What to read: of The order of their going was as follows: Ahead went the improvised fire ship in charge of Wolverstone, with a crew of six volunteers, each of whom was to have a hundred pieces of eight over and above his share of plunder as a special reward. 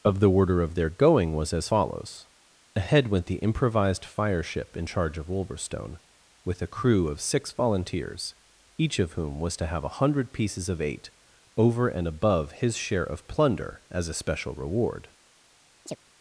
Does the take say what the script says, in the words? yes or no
yes